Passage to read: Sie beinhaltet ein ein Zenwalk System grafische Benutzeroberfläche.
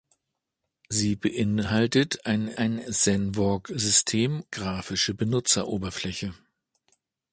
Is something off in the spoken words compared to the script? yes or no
no